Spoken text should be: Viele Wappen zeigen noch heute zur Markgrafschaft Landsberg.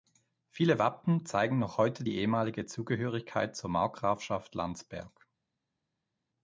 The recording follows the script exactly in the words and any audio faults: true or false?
false